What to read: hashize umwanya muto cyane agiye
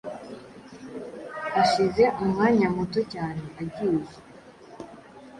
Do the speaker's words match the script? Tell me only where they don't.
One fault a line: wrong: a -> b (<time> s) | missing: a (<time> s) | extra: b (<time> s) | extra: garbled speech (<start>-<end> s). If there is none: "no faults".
no faults